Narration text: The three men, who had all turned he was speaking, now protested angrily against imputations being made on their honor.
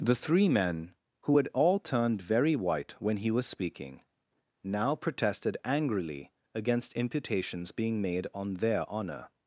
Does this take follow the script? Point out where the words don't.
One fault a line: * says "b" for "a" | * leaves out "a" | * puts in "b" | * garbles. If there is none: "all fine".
* puts in "very white when"